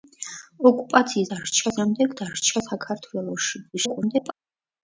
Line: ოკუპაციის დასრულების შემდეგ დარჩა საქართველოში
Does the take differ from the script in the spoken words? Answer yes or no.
yes